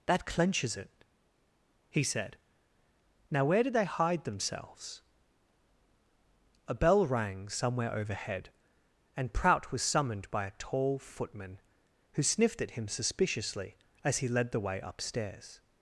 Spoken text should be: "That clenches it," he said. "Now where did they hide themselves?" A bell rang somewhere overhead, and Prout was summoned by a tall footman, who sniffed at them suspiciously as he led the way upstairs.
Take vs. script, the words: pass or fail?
fail